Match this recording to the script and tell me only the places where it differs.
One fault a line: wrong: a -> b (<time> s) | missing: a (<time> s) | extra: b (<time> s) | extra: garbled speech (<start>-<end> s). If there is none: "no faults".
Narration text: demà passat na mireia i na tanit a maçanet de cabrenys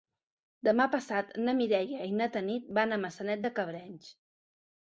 extra: van (2.8 s)